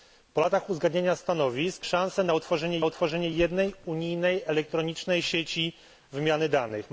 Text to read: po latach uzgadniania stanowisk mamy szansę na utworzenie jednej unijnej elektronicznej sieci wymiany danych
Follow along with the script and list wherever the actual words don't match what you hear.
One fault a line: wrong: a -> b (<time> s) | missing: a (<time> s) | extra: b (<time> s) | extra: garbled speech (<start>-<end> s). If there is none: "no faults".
missing: mamy (1.9 s)
extra: utworzenie (2.8 s)